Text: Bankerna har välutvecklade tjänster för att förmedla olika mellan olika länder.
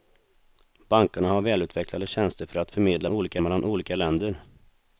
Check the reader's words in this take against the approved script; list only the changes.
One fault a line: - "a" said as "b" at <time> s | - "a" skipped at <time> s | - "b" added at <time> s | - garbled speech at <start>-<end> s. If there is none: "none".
none